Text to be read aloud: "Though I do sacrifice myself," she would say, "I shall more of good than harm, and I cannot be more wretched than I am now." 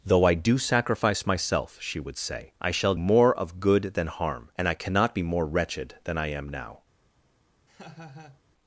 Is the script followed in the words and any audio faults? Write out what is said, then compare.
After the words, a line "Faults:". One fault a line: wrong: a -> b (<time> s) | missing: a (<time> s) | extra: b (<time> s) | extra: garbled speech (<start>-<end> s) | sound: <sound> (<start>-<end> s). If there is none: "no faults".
"Though I do sacrifice myself," she would say, "I shall more of good than harm, and I cannot be more wretched than I am now."
Faults:
sound: laugh (7.7-8.4 s)